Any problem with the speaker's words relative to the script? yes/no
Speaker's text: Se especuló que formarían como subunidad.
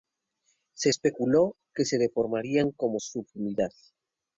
yes